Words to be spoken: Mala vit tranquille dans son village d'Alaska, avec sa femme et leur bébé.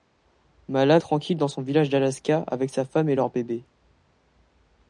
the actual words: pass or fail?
fail